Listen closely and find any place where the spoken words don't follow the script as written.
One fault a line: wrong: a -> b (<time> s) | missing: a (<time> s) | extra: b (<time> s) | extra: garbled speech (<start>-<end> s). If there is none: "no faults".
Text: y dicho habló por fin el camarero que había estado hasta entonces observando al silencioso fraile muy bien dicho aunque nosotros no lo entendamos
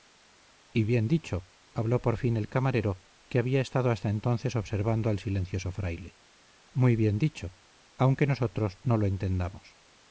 extra: bien (0.8 s)